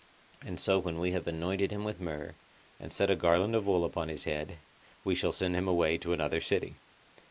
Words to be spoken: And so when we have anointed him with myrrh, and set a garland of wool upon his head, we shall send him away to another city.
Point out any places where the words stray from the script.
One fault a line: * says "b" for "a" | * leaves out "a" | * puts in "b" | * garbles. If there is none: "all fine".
all fine